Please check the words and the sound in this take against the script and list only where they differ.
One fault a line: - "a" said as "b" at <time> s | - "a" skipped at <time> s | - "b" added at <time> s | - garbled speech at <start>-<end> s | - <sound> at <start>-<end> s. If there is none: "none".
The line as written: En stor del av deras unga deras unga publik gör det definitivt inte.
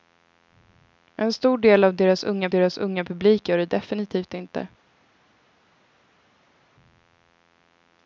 none